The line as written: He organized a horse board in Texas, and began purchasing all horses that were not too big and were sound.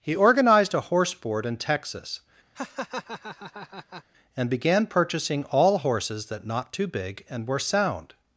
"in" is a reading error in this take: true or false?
false